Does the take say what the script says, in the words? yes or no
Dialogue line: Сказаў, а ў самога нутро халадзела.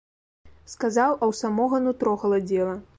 yes